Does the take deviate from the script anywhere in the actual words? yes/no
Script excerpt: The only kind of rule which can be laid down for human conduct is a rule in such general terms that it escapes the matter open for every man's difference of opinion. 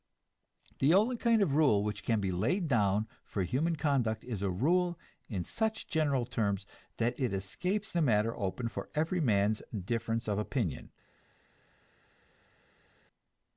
no